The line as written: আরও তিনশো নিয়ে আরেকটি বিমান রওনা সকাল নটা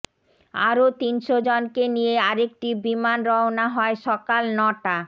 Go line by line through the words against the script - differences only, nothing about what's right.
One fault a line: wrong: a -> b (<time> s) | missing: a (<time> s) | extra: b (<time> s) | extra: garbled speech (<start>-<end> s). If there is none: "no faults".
extra: জনকে (1.5 s)
extra: হয় (3.7 s)